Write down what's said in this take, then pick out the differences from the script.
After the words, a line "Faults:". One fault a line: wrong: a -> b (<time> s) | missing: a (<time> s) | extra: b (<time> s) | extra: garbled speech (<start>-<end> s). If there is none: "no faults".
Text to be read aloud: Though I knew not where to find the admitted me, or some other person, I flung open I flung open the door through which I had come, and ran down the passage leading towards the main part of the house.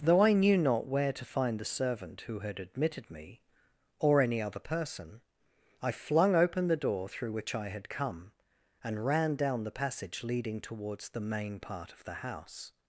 Though I knew not where to find the servant who had admitted me, or any other person, I flung open the door through which I had come, and ran down the passage leading towards the main part of the house.
Faults:
extra: servant who had (1.6 s)
wrong: some -> any (4.2 s)
missing: I flung open (6.7 s)